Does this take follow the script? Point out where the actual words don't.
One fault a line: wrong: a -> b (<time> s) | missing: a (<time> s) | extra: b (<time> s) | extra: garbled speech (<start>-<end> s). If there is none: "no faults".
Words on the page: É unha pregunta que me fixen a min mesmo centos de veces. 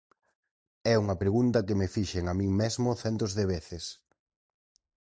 no faults